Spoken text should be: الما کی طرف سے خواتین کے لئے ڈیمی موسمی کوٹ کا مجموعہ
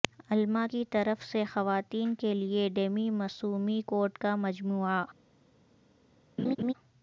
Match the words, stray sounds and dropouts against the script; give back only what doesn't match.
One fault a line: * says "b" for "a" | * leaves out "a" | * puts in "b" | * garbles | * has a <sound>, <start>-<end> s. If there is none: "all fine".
* has a laugh, 6.4-6.7 s